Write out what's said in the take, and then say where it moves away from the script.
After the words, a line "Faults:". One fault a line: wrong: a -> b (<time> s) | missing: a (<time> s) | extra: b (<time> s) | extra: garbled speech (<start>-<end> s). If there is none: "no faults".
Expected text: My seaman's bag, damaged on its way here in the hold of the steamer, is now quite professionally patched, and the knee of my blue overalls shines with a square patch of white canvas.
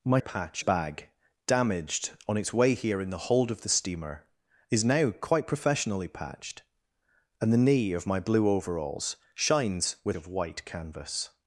My patch bag, damaged on its way here in the hold of the steamer, is now quite professionally patched, and the knee of my blue overalls shines with of white canvas.
Faults:
wrong: seaman's -> patch (0.2 s)
missing: a square patch (10.2 s)